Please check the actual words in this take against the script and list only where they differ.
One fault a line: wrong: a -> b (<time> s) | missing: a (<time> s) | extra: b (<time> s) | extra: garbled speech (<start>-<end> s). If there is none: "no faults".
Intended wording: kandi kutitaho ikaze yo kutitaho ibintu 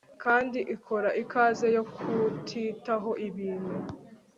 wrong: kutitaho -> ikora (0.8 s)